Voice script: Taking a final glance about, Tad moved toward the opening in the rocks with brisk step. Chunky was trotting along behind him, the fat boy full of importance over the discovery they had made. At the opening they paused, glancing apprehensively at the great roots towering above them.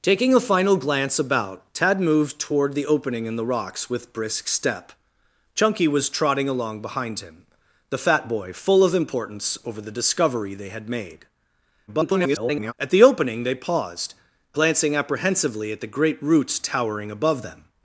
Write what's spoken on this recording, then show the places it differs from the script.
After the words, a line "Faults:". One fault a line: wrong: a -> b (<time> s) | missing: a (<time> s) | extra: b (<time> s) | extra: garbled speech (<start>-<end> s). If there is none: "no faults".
Taking a final glance about, Tad moved toward the opening in the rocks with brisk step. Chunky was trotting along behind him, the fat boy full of importance over the discovery they had made. [garbled] At the opening they paused, glancing apprehensively at the great roots towering above them.
Faults:
extra: garbled speech (11.9-12.7 s)